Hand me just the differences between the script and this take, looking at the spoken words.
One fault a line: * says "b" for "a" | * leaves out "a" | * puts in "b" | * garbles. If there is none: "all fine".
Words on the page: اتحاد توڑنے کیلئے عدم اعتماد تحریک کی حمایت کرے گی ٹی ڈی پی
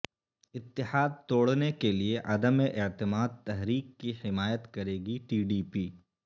all fine